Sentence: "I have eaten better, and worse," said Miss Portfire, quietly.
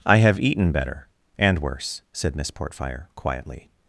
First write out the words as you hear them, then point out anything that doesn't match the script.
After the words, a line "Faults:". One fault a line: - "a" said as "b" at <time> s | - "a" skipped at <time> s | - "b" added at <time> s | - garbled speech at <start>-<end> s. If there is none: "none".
"I have eaten better, and worse," said Miss Portfire, quietly.
Faults:
none